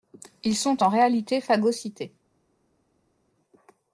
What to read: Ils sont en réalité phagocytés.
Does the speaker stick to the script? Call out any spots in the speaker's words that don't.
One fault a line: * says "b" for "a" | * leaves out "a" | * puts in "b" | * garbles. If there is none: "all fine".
all fine